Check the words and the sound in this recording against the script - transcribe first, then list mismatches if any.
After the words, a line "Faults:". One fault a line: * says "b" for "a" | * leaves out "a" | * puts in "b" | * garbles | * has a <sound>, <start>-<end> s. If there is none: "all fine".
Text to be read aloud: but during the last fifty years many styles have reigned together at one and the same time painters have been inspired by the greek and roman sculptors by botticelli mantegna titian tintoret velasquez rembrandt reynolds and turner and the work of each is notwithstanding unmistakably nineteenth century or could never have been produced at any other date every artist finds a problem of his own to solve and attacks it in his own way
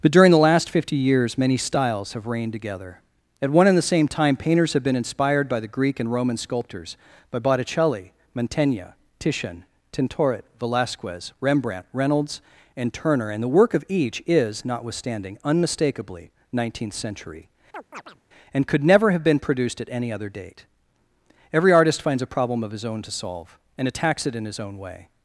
but during the last fifty years many styles have reigned together at one and the same time painters have been inspired by the greek and roman sculptors by botticelli mantegna titian tintoret velasquez rembrandt reynolds and turner and the work of each is notwithstanding unmistakably nineteenth century and could never have been produced at any other date every artist finds a problem of his own to solve and attacks it in his own way
Faults:
* has a chirp, 17.7-18.2 s
* says "and" for "or"